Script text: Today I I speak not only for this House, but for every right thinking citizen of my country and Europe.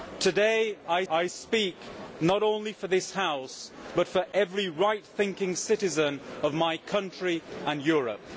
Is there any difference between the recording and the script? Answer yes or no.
no